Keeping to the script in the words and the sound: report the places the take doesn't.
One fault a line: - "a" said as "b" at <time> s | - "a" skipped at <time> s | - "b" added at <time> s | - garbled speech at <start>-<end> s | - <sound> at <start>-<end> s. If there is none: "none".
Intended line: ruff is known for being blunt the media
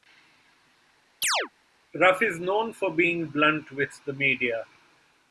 - chirp at 1.2-1.5 s
- "with" added at 3.7 s